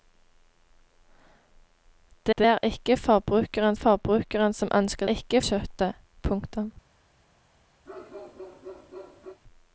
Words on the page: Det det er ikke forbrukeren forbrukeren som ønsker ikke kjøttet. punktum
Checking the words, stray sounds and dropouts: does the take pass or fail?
fail